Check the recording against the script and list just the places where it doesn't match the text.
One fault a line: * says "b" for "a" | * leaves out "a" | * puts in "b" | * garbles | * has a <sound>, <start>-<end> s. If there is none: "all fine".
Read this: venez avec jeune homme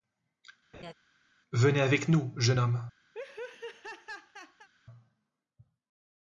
* has a laugh, 0.7-0.9 s
* puts in "nous"
* has a laugh, 3.1-4.7 s